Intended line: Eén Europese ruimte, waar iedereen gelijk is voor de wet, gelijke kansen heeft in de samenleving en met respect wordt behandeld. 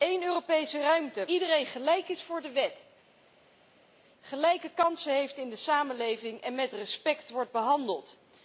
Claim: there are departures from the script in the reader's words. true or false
true